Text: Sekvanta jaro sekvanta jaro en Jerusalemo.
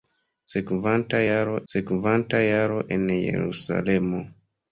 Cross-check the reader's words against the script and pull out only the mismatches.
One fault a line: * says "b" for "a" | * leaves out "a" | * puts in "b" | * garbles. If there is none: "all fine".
all fine